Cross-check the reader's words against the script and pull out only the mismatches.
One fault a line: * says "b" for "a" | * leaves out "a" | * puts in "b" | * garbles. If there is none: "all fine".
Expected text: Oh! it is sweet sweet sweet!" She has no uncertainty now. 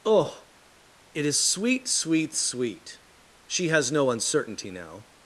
all fine